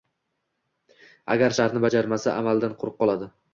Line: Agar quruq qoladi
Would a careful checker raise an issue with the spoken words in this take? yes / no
yes